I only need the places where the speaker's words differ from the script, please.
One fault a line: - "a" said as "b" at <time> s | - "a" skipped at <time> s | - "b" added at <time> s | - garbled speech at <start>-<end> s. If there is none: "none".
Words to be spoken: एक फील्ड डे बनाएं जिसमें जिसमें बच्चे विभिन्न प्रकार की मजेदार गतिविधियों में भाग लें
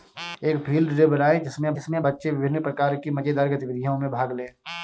none